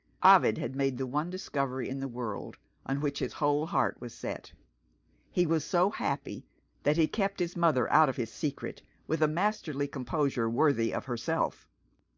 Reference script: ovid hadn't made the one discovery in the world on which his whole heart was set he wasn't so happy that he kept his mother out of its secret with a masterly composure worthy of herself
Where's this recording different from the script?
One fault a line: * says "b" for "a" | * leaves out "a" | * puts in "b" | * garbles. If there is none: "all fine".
* says "had" for "hadn't"
* says "was" for "wasn't"
* says "his" for "its"